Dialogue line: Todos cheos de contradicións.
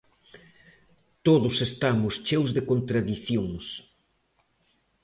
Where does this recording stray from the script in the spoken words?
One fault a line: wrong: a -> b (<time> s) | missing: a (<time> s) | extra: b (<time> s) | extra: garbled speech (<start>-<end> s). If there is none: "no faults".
extra: estamos (1.7 s)